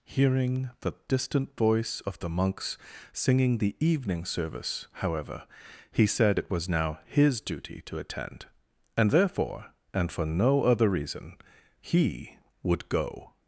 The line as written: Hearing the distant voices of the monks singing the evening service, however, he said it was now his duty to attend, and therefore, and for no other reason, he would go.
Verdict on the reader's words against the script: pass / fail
fail